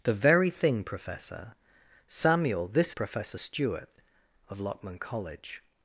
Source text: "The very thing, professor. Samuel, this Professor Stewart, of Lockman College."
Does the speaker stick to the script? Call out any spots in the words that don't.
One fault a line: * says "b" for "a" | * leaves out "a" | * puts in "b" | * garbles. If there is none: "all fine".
all fine